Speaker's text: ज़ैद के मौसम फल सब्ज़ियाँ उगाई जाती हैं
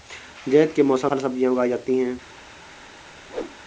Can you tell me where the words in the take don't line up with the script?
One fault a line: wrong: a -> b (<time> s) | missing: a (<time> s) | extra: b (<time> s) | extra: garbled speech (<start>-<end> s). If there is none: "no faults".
no faults